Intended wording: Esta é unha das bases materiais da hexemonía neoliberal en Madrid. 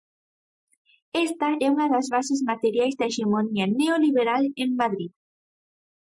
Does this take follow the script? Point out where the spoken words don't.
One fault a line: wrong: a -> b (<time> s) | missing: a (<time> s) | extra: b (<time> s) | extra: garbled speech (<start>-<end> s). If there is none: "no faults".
no faults